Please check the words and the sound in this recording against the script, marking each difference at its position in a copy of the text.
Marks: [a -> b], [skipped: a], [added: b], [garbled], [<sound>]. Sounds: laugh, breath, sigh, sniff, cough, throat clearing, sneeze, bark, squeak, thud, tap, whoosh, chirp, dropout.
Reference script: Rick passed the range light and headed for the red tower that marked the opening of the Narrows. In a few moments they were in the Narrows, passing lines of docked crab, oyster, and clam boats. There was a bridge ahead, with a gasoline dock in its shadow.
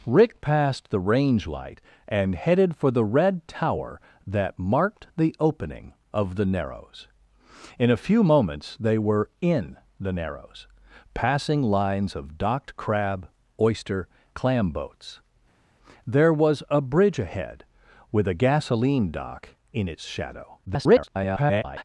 Rick passed the range light and headed for the red tower that marked the opening of the Narrows. In a few moments they were in the Narrows, passing lines of docked crab, oyster, [skipped: and] clam boats. There was a bridge ahead, with a gasoline dock in its shadow. [garbled]